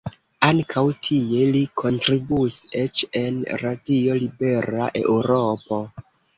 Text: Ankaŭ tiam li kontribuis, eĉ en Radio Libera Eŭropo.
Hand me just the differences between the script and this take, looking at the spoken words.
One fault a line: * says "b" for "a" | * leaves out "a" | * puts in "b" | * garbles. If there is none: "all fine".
* says "tie" for "tiam"